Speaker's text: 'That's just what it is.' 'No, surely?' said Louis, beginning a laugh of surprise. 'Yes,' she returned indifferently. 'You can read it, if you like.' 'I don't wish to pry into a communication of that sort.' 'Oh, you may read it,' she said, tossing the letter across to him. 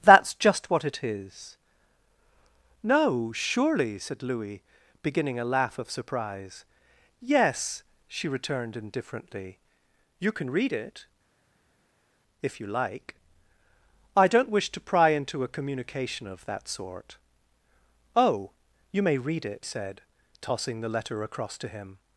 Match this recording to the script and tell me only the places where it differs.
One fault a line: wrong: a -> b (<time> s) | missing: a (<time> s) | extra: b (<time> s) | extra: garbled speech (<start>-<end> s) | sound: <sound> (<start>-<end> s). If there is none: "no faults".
missing: she (19.7 s)